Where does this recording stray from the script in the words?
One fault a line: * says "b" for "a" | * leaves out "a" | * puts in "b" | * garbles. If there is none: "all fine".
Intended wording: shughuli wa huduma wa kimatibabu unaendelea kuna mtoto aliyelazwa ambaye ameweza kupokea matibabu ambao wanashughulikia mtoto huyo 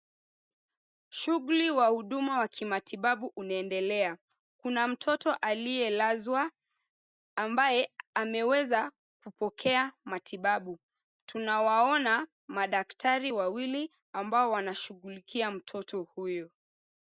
* puts in "tunawaona madaktari wawili"